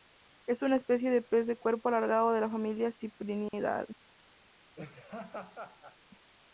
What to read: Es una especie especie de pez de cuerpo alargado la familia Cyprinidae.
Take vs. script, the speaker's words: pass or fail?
fail